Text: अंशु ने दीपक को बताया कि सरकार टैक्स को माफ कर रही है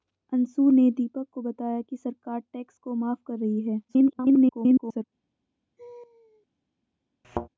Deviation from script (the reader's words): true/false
true